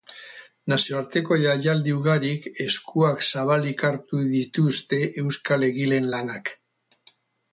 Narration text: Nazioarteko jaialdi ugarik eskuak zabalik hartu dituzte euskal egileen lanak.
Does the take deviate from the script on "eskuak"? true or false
false